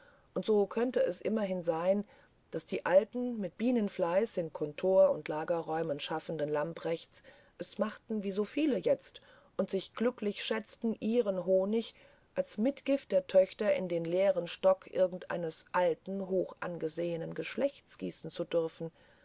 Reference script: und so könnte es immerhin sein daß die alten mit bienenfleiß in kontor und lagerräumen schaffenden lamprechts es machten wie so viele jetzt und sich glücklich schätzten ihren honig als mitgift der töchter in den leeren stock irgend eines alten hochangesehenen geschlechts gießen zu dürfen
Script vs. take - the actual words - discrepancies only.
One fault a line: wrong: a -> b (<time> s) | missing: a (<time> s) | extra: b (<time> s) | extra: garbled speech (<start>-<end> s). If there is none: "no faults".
no faults